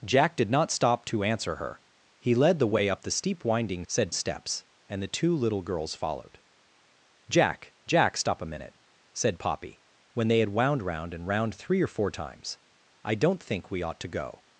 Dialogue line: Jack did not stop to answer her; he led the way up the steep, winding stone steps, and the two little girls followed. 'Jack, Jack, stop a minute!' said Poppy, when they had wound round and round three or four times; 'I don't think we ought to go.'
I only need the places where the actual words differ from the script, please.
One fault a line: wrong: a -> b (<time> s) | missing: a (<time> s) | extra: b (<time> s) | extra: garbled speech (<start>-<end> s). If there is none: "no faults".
wrong: stone -> said (3.9 s)